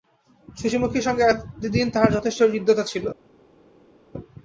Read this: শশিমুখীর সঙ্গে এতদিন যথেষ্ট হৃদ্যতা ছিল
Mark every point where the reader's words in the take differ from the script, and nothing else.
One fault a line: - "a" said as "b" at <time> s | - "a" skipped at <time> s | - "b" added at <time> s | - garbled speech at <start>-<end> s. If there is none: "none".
- "তাহার" added at 1.9 s